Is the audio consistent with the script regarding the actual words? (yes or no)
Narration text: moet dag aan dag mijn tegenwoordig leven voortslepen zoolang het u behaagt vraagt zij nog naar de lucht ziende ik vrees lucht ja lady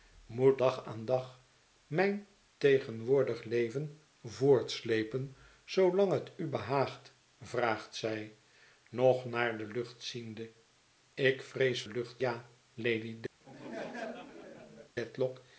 yes